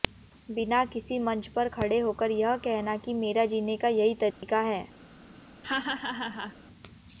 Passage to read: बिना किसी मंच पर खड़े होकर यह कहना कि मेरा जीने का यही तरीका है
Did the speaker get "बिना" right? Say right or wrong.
right